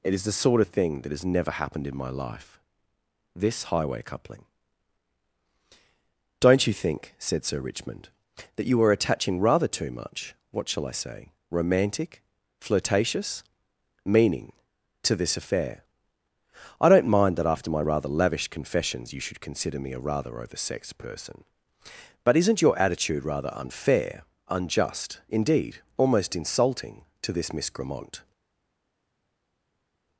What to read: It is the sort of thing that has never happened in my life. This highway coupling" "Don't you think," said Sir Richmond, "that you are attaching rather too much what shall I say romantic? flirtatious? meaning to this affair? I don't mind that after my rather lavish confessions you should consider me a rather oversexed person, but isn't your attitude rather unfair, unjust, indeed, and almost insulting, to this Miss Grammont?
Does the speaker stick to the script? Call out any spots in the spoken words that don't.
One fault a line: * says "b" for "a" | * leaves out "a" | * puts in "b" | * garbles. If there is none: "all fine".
* leaves out "and"